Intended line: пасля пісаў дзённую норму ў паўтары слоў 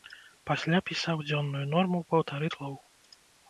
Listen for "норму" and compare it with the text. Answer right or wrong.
right